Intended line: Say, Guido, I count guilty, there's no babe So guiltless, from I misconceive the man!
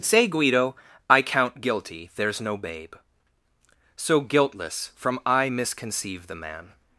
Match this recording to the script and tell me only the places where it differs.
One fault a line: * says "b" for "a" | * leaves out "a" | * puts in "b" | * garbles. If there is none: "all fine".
all fine